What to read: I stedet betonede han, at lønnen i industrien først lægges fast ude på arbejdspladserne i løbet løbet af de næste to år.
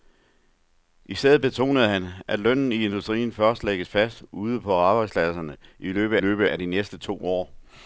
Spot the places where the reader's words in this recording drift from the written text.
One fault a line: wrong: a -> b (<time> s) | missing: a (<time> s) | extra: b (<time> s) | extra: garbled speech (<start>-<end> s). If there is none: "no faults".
no faults